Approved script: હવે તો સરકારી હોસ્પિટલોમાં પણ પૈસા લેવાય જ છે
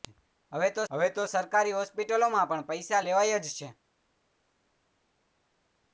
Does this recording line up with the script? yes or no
no